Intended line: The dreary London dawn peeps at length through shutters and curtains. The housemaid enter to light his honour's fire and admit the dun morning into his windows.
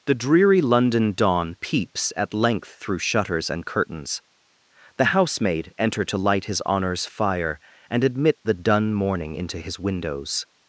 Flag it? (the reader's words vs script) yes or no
no